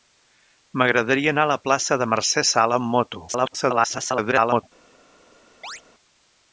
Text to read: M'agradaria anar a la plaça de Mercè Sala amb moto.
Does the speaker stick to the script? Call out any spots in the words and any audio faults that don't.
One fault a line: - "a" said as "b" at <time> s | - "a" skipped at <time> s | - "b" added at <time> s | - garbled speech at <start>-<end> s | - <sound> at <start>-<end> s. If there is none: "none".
- garbled speech at 3.3-4.6 s
- chirp at 5.6-5.8 s